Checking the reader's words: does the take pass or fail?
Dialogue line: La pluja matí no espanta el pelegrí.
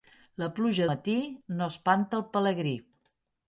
pass